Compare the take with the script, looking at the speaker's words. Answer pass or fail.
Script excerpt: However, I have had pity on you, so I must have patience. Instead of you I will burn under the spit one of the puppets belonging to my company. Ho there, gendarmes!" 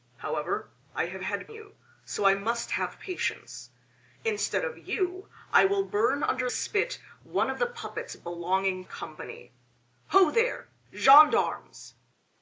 fail